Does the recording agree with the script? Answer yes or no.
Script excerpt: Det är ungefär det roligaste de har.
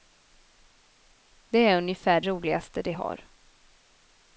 no